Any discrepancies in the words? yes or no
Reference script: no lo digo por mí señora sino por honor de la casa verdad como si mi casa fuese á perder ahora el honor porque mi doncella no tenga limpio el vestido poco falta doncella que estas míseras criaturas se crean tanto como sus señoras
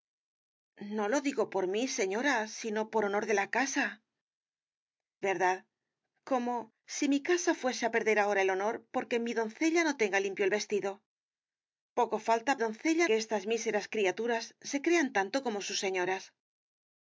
no